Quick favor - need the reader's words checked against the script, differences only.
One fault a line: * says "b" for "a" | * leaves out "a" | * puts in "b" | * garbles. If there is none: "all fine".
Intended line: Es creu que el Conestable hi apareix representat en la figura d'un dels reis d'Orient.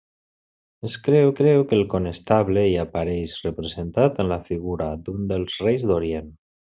* puts in "creu"